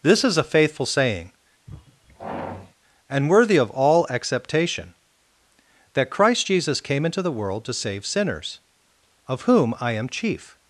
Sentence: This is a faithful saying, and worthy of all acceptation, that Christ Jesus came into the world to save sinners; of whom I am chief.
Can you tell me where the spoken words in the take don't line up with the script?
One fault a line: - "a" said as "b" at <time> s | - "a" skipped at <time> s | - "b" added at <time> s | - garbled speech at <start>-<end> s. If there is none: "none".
none